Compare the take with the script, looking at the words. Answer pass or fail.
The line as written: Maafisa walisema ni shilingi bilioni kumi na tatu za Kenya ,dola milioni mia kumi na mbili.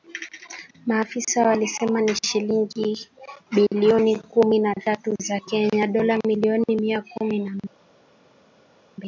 pass